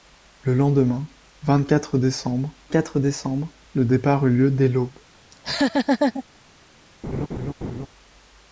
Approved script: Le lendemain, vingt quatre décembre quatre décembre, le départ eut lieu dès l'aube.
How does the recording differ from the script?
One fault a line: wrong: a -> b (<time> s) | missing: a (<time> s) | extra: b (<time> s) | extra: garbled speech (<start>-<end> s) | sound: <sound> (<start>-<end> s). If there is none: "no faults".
sound: laugh (5.3-6.2 s)
sound: laugh (7.0-7.9 s)